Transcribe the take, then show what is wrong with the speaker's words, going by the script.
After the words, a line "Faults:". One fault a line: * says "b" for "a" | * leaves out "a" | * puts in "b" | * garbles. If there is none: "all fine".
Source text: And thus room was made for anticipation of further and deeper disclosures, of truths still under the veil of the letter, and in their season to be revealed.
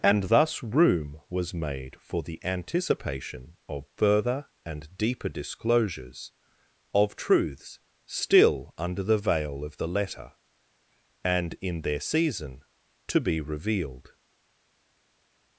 And thus room was made for the anticipation of further and deeper disclosures, of truths still under the veil of the letter, and in their season to be revealed.
Faults:
* puts in "the"